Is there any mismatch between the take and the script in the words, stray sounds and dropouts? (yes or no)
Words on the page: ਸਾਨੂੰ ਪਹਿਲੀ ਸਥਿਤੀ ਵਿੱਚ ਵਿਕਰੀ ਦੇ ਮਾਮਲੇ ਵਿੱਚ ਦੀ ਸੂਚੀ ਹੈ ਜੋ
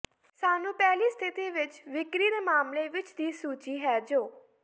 no